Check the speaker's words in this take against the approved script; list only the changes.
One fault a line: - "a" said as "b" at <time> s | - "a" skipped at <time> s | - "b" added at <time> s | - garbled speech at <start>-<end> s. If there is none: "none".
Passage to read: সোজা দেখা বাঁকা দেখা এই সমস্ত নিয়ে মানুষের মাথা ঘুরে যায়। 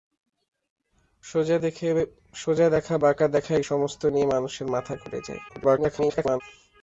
- garbled speech at 5.5-6.4 s